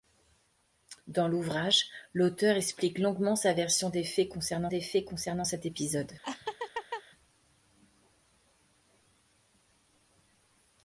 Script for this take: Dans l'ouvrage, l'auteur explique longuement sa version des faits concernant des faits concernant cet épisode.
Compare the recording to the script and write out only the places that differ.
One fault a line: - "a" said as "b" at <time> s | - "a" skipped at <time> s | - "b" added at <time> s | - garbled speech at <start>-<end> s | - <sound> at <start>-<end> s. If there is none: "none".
- laugh at 6.2-7.0 s